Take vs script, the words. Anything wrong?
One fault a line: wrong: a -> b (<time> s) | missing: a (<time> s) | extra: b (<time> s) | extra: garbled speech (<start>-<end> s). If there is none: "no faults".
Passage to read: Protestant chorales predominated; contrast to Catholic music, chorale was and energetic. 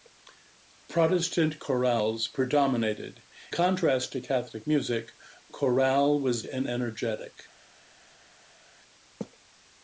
no faults